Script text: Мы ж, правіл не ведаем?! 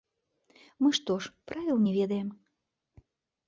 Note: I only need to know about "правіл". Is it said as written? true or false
true